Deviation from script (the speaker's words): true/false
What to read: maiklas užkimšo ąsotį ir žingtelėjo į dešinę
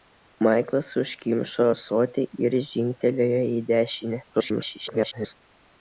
true